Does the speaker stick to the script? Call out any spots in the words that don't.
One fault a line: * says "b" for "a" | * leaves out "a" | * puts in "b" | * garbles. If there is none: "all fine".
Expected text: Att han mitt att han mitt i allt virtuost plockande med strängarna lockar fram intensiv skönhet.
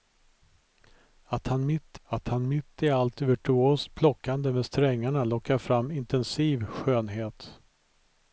all fine